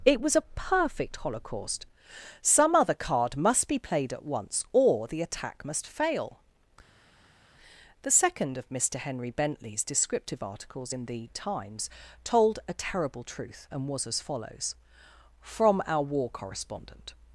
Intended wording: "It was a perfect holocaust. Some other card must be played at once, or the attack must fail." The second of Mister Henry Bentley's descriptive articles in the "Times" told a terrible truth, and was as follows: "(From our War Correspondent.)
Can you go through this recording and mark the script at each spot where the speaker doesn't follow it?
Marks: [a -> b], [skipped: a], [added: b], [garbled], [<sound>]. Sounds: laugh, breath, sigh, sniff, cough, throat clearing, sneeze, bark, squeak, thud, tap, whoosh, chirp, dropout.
"It was a perfect holocaust. Some other card must be played at once, or the attack must fail." The second of Mister Henry Bentley's descriptive articles in the "Times" told a terrible truth, and was as follows: "(From our War Correspondent.)